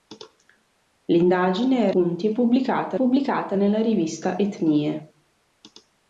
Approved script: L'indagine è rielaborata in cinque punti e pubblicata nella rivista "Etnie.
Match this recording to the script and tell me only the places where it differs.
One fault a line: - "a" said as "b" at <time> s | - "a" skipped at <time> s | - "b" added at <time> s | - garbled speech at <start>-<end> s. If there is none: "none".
- "rielaborata in cinque" skipped at 1.9 s
- "pubblicata" added at 2.9 s